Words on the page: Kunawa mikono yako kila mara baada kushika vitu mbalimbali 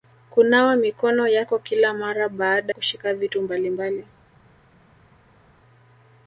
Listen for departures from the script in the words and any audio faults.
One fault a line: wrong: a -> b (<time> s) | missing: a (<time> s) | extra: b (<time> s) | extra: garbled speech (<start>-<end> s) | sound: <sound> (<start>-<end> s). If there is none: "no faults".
no faults